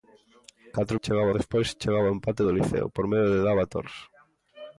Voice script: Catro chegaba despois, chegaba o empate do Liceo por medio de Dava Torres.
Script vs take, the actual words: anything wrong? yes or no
no